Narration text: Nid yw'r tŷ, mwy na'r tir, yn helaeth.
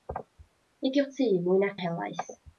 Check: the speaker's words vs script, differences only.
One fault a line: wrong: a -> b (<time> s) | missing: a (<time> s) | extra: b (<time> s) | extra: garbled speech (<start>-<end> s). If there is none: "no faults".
missing: tir (1.8 s)